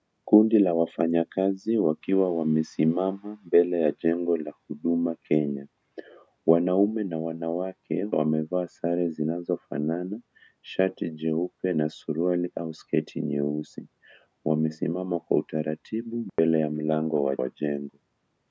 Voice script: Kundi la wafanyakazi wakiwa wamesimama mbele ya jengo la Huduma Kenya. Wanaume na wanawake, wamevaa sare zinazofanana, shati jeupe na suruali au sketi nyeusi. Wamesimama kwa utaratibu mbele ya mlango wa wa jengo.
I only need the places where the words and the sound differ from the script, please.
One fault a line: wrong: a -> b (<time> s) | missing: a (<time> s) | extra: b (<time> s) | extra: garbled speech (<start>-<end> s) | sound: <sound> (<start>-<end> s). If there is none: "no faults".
sound: dropout (16.3-16.4 s)